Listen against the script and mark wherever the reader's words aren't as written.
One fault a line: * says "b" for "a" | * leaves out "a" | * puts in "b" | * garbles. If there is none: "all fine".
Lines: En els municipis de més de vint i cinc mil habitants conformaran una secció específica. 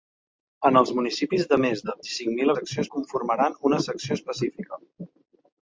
* leaves out "vint"
* says "secció" for "habitants"